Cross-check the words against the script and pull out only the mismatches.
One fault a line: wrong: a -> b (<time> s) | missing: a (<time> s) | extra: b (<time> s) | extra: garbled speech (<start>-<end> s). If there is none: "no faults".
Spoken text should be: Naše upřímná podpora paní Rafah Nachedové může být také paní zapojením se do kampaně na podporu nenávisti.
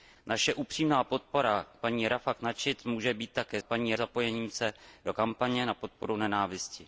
no faults